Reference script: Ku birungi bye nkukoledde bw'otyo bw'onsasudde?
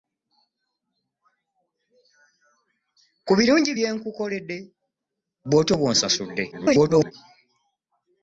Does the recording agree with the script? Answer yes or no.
no